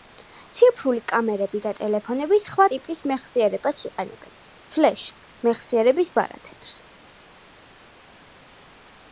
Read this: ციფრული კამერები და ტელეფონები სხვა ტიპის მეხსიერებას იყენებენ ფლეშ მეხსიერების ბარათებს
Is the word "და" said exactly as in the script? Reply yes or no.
yes